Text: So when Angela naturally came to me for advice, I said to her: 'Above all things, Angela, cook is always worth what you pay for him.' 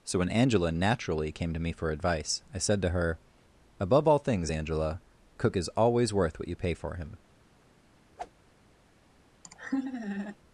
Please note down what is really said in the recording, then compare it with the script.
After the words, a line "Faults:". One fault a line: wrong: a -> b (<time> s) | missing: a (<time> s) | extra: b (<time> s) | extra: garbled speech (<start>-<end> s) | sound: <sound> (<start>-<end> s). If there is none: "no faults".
So when Angela naturally came to me for advice, I said to her: 'Above all things, Angela, cook is always worth what you pay for him.'
Faults:
sound: whoosh (8.2-8.3 s)
sound: laugh (9.4-10.4 s)